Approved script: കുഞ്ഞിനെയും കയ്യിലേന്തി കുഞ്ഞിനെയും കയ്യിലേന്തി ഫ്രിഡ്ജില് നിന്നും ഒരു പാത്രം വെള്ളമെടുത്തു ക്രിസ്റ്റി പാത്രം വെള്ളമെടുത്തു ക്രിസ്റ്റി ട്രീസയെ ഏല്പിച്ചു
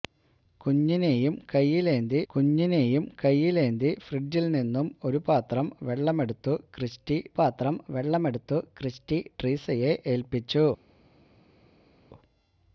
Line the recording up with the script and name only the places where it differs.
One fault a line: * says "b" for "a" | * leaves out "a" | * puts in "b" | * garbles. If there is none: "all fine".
all fine